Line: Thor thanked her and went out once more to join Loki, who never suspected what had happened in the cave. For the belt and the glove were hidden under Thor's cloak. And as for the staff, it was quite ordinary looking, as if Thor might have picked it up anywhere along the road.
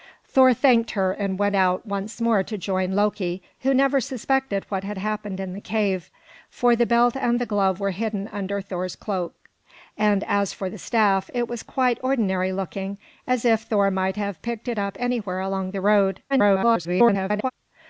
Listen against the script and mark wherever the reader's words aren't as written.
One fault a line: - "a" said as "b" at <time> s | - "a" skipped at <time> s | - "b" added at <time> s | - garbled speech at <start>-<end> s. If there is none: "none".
- garbled speech at 16.3-17.5 s